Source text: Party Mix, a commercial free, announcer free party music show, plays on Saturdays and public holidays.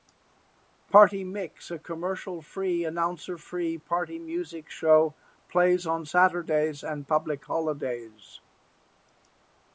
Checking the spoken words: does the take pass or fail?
pass